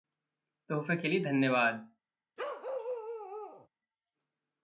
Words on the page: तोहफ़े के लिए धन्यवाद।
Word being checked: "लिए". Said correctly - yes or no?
yes